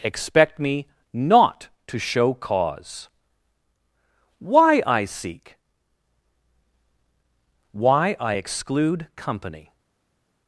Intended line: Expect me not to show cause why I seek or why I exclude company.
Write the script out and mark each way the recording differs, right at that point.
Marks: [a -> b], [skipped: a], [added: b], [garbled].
Expect me not to show cause why I seek [skipped: or] why I exclude company.